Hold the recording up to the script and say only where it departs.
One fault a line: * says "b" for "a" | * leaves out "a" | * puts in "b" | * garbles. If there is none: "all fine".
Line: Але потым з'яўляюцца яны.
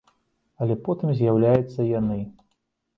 all fine